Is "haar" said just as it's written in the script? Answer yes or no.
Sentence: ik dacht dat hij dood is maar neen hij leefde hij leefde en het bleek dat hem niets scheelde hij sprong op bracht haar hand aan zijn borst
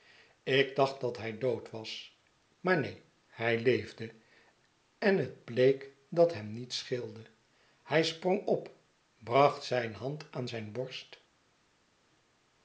no